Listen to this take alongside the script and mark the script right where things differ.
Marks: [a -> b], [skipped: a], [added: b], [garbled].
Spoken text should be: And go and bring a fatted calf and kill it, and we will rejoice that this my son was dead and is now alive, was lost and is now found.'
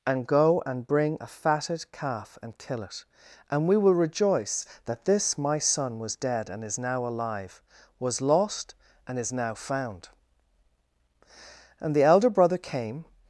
And go and bring a fatted calf and kill it, and we will rejoice that this my son was dead and is now alive, was lost and is now found.' [added: And the elder brother came]